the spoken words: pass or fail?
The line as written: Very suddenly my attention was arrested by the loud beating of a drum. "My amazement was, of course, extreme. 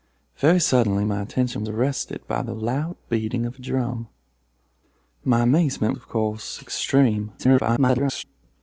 fail